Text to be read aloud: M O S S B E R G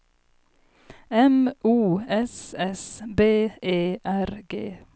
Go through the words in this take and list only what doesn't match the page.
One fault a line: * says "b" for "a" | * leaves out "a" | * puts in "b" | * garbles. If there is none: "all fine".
all fine